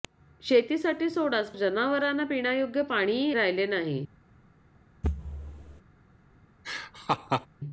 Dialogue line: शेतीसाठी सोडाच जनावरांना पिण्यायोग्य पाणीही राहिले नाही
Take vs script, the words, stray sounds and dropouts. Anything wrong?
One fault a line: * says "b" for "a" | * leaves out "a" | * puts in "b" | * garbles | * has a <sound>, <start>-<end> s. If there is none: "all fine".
* has a thud, 5.0-5.8 s
* has a laugh, 6.6-7.5 s